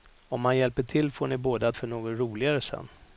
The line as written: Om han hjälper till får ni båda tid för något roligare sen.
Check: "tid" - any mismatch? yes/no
yes